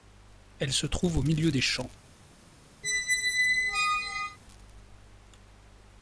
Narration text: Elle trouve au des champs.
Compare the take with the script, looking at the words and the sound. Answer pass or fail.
fail